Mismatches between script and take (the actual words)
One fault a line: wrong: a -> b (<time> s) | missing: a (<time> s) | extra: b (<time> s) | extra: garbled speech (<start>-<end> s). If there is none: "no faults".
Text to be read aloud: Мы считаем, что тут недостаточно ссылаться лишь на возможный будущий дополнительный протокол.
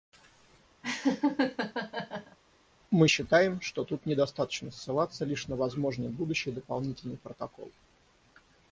no faults